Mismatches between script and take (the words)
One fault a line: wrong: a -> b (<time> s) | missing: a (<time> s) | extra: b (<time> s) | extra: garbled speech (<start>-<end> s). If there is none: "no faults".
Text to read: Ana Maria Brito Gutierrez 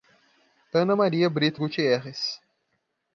no faults